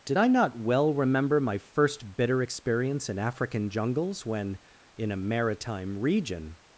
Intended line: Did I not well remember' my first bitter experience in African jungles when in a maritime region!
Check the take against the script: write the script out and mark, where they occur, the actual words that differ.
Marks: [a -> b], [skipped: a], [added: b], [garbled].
Did I not well remember' my first bitter experience in African jungles when in a maritime region!